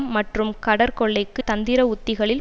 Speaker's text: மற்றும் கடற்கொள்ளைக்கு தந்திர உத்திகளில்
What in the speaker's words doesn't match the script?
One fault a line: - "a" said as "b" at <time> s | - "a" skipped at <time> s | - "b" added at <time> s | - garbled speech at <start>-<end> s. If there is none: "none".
none